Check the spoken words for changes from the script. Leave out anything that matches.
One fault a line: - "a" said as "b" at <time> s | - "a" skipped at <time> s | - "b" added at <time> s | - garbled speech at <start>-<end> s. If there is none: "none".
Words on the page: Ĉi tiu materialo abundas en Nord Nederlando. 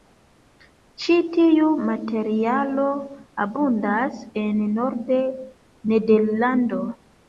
none